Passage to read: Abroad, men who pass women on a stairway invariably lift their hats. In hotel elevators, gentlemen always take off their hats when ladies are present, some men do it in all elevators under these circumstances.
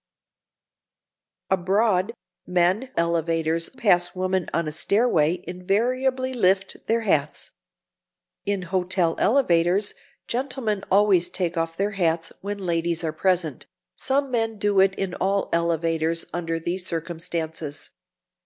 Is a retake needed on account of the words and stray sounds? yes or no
yes